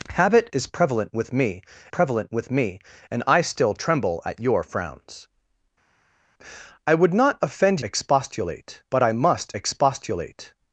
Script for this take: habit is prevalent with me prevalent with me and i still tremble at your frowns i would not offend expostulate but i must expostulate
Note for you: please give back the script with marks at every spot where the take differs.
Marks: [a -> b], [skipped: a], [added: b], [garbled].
habit is prevalent with me prevalent with me and i still tremble at your frowns i would not offend expostulate but i must expostulate